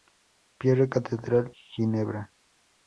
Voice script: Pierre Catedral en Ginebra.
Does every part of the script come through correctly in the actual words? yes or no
no